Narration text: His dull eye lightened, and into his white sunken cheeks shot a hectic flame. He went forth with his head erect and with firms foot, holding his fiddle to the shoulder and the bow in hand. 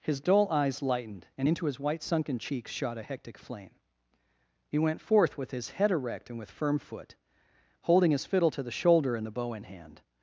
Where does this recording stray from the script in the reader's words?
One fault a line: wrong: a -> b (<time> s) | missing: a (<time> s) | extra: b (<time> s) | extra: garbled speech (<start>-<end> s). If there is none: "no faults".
wrong: eye -> eyes (0.5 s)
wrong: firms -> firm (6.5 s)